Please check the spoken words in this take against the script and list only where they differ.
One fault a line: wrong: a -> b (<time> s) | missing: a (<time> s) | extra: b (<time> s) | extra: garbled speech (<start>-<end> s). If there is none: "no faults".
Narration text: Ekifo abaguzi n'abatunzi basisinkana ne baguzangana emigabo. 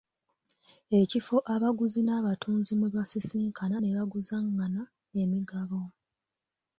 extra: mwe (2.8 s)